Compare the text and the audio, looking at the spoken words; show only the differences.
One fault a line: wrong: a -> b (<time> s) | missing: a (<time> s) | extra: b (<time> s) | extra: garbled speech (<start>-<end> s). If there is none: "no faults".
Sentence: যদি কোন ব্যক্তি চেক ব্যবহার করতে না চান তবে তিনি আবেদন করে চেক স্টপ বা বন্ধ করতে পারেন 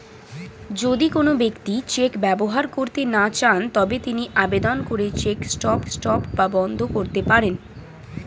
extra: স্টপ (5.9 s)